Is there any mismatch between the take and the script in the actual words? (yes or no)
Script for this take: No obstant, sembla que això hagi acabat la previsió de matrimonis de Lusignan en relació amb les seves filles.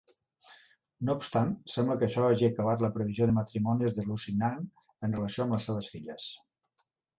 no